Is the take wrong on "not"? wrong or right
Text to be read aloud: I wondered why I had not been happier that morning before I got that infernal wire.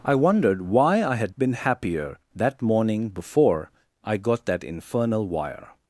wrong